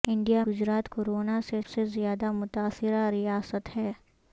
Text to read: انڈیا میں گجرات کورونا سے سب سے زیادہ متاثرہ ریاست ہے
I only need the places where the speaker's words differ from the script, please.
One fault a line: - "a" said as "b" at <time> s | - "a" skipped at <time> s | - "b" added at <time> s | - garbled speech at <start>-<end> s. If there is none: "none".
- "میں" skipped at 0.4 s
- "سب" skipped at 1.6 s